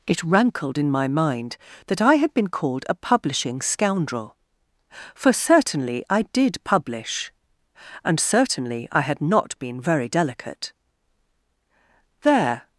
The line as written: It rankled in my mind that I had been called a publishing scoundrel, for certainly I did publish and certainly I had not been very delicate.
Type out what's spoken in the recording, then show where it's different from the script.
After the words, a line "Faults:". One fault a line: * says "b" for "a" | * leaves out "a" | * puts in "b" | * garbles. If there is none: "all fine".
It rankled in my mind that I had been called a publishing scoundrel, for certainly I did publish and certainly I had not been very delicate. There
Faults:
* puts in "There"